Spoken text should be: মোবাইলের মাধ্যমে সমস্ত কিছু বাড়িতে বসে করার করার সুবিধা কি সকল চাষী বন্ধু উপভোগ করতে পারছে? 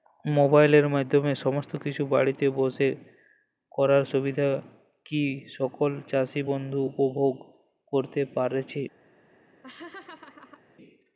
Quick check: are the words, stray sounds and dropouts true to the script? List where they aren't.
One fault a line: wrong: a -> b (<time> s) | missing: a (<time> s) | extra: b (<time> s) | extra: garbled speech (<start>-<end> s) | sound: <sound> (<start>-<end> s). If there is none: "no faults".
missing: করার (4.0 s)
sound: laugh (9.6-10.6 s)